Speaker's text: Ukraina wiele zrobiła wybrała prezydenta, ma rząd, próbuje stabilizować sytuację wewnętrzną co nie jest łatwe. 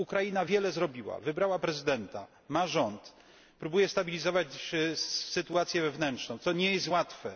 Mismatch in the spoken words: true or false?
false